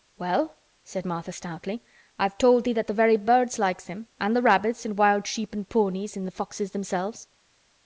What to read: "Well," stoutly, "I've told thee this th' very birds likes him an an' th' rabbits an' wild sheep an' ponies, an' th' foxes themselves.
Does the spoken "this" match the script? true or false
false